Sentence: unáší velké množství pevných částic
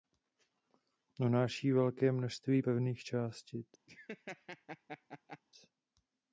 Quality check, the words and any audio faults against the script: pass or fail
fail